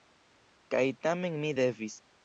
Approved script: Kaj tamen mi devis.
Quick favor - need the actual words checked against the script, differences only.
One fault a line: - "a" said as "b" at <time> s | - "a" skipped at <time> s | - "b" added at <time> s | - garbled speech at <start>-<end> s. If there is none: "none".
none